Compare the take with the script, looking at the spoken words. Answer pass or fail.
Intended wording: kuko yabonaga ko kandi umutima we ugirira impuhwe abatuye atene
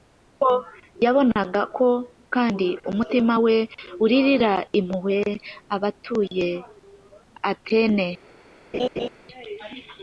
pass